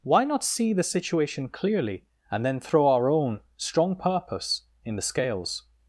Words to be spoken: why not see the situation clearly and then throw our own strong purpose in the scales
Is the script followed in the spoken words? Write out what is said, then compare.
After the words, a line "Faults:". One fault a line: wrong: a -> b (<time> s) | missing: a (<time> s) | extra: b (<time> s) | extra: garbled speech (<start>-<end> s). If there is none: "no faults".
why not see the situation clearly and then throw our own strong purpose in the scales
Faults:
no faults